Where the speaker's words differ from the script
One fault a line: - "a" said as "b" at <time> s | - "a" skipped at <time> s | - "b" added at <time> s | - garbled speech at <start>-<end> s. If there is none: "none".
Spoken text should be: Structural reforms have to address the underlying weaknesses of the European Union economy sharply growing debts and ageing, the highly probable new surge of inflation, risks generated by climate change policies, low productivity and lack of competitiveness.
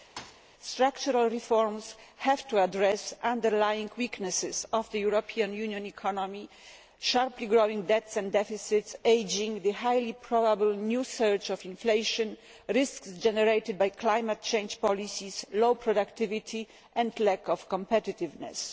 - "deficits" added at 8.3 s